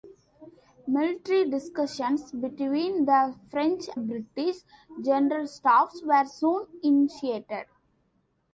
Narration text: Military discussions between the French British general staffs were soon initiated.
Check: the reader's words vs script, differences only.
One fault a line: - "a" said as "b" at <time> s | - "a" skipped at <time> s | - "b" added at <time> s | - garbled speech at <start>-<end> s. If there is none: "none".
none